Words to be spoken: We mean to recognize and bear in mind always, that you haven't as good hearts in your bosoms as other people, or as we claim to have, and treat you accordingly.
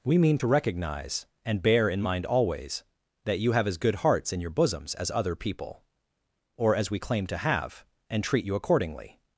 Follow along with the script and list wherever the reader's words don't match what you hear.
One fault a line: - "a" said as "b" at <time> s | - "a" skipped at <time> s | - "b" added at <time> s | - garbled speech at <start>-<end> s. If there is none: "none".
- "haven't" said as "have" at 3.5 s